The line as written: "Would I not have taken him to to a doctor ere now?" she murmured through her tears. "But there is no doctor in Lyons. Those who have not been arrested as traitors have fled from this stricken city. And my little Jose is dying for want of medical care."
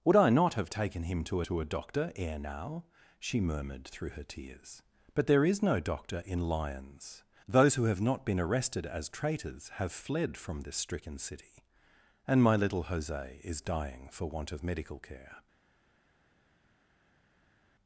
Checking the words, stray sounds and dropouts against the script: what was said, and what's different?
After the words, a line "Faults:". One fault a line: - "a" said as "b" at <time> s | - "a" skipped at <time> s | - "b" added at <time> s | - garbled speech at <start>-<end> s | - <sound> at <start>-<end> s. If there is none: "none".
"Would I not have taken him to to a doctor ere now?" she murmured through her tears. "But there is no doctor in Lyons. Those who have not been arrested as traitors have fled from this stricken city. And my little Jose is dying for want of medical care."
Faults:
none